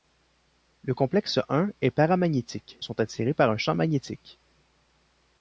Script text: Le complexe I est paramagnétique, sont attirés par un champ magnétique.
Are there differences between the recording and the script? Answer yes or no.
no